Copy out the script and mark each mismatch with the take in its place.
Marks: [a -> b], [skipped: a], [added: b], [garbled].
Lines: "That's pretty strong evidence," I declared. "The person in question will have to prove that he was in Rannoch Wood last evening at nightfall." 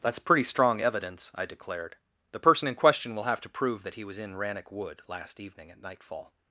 "That's pretty strong evidence," I declared. "The person in question will have to prove that he was in Rannoch Wood last evening at nightfall."